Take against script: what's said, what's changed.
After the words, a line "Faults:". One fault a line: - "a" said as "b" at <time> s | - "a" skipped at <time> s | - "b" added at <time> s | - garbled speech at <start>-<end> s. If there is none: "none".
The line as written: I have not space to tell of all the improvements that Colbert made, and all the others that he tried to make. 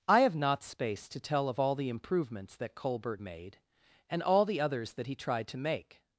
I have not space to tell of all the improvements that Colbert made, and all the others that he tried to make.
Faults:
none